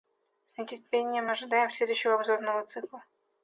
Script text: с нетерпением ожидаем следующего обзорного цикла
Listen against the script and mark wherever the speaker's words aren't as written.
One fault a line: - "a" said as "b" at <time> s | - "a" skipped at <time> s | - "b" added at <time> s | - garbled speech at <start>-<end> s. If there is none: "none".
none